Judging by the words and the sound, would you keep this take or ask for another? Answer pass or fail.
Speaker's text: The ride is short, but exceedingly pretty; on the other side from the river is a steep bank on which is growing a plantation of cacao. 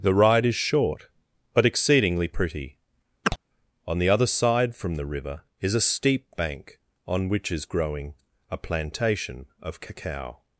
fail